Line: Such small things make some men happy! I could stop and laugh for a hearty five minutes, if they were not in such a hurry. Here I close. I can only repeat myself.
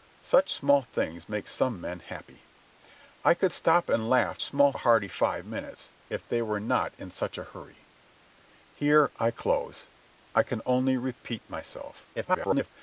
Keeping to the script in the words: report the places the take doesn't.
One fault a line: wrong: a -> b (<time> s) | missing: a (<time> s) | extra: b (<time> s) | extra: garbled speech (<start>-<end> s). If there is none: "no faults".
wrong: for -> small (4.4 s)
extra: garbled speech (12.1-12.7 s)